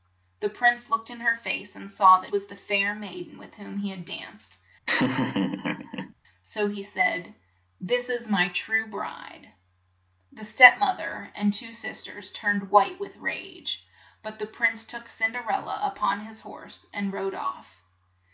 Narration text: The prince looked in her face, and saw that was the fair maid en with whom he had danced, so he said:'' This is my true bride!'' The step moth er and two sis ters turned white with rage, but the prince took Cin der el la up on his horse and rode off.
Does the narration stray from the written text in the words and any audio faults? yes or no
yes